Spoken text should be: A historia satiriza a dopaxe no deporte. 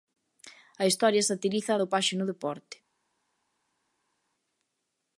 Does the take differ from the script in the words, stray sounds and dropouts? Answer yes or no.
no